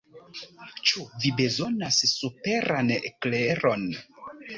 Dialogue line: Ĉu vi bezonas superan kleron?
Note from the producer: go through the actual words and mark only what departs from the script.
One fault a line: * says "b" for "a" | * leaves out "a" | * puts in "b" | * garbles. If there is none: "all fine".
all fine